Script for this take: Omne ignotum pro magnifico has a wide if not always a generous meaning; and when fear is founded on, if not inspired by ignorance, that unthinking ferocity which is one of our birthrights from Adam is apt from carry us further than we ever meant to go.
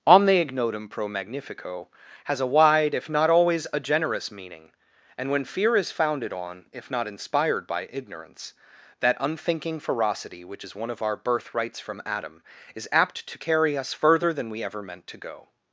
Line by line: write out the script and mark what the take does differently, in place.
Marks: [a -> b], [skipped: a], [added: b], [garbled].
Omne ignotum pro magnifico has a wide if not always a generous meaning; and when fear is founded on, if not inspired by ignorance, that unthinking ferocity which is one of our birthrights from Adam is apt [from -> to] carry us further than we ever meant to go.